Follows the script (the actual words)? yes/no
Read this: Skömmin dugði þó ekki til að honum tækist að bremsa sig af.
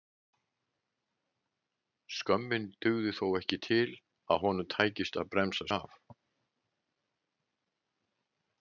no